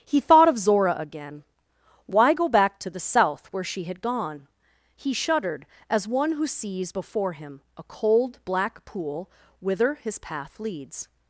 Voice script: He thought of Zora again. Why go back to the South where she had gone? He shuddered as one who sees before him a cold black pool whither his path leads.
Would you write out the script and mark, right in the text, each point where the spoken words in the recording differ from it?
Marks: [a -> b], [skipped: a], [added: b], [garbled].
He thought of Zora again. Why go back to the South where she had gone? He shuddered as one who sees before him a cold black pool whither his path leads.